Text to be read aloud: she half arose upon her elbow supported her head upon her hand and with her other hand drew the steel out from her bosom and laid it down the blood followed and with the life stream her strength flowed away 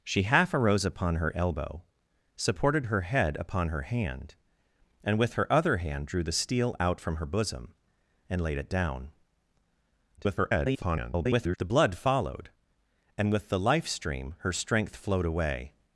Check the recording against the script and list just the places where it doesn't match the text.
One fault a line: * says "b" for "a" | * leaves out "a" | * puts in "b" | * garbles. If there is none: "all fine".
* garbles